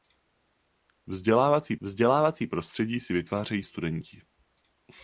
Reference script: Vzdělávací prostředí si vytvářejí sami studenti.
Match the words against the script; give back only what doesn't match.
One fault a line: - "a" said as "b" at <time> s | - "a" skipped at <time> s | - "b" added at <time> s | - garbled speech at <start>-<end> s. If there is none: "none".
- "vzdělávací" added at 1.8 s
- "sami" skipped at 3.6 s